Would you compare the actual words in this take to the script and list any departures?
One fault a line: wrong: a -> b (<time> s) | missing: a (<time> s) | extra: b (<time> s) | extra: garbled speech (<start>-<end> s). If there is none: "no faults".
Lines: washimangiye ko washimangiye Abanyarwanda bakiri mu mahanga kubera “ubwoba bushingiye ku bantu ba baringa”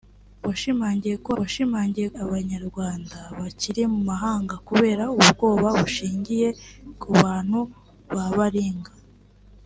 no faults